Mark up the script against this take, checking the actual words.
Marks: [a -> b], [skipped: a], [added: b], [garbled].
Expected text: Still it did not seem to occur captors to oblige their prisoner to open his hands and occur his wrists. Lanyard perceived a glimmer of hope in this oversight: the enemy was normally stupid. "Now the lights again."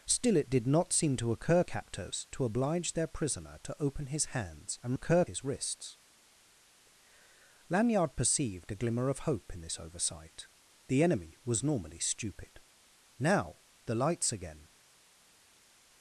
Still it did not seem to occur captors to oblige their prisoner to open his hands and occur his wrists. Lanyard perceived a glimmer of hope in this oversight: the enemy was normally stupid. "Now the lights again."